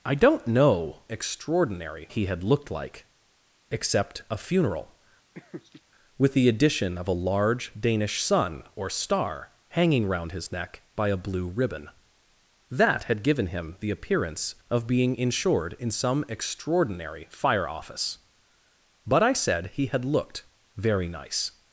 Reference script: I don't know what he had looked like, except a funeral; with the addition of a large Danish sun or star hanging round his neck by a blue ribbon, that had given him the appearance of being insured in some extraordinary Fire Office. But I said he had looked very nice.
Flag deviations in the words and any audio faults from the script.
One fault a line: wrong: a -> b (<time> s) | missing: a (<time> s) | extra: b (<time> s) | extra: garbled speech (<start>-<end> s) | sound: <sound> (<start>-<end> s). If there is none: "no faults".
wrong: what -> extraordinary (1.1 s)
sound: laugh (5.3-5.8 s)